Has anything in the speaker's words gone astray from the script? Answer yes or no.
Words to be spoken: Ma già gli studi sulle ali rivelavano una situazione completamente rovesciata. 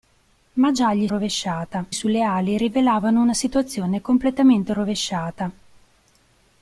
yes